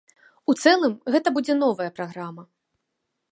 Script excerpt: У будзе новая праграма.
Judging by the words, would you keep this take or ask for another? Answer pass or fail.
fail